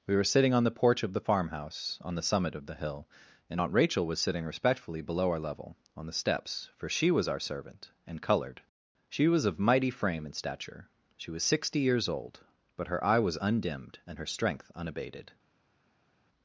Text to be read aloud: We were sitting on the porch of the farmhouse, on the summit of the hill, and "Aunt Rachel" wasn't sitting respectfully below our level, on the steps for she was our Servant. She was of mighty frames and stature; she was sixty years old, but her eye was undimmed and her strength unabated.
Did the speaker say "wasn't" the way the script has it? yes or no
no